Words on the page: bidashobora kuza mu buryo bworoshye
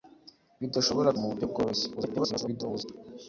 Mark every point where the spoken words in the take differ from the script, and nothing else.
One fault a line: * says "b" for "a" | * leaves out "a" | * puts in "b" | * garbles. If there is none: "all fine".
* leaves out "kuza"
* garbles